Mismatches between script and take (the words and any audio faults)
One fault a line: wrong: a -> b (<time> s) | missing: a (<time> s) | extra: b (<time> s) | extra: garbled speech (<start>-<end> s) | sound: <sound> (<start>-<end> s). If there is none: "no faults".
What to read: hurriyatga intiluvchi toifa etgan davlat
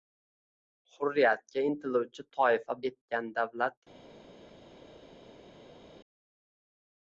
no faults